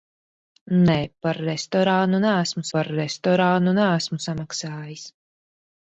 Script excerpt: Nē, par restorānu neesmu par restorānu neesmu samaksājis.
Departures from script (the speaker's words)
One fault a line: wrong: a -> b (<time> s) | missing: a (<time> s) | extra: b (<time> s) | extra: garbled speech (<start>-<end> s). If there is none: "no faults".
no faults